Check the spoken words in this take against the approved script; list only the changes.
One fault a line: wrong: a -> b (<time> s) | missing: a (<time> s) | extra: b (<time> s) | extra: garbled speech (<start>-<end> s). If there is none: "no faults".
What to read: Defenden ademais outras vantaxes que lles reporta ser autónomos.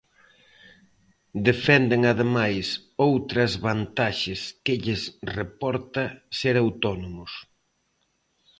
no faults